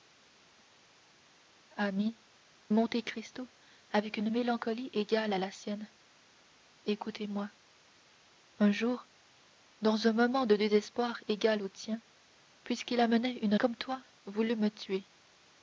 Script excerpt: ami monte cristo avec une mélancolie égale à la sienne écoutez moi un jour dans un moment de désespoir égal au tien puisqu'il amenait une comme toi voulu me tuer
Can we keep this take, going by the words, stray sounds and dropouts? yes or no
yes